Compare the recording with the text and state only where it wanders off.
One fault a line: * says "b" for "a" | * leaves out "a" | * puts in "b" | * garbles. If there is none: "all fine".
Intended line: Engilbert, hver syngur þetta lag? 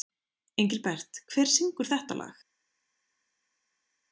all fine